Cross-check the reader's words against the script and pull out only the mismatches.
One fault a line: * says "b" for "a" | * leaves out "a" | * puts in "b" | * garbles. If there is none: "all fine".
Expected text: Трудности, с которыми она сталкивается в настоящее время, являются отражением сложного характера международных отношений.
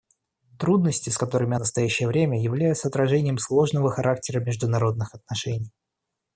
* leaves out "она сталкивается"